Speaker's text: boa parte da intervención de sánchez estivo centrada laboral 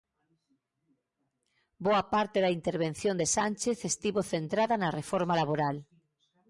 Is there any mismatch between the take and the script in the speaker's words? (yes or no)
yes